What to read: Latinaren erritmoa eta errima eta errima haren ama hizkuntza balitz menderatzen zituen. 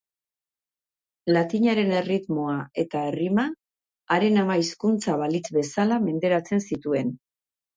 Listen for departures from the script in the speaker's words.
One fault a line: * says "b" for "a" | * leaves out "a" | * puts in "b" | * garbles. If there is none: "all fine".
* leaves out "eta errima"
* puts in "bezala"